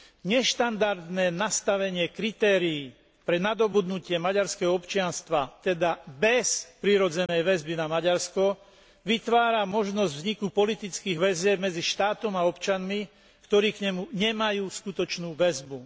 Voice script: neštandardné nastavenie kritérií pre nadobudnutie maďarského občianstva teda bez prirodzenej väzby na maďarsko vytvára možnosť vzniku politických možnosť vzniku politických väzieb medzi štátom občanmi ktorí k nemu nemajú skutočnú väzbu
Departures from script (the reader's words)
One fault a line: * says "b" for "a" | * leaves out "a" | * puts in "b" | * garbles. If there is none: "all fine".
* leaves out "možnosť vzniku politických"
* puts in "a"